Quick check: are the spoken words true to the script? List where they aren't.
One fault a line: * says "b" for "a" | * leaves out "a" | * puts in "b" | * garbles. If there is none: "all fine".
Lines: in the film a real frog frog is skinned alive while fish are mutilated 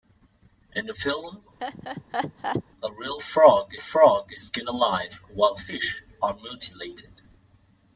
all fine